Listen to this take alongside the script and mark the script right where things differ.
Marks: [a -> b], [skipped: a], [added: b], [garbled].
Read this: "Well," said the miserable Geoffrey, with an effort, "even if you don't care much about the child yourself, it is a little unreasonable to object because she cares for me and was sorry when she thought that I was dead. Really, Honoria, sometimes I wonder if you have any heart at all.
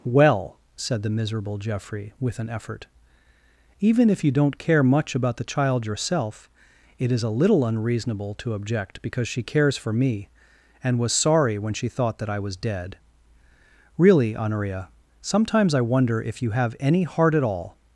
"Well," said the miserable Geoffrey, with an effort, "even if you don't care much about the child yourself, it is a little unreasonable to object because she cares for me and was sorry when she thought that I was dead. Really, Honoria, sometimes I wonder if you have any heart at all.